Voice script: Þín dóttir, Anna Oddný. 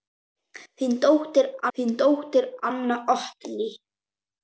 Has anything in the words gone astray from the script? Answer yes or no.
yes